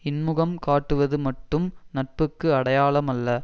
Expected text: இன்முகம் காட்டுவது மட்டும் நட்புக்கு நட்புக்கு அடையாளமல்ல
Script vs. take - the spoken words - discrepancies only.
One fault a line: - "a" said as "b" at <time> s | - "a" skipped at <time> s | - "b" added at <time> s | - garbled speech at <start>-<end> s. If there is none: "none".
- "நட்புக்கு" skipped at 2.5 s